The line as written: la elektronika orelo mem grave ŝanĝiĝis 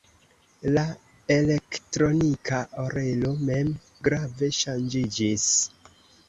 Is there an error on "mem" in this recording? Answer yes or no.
no